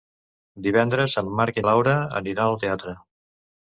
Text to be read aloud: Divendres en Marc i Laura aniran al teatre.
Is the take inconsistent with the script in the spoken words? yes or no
no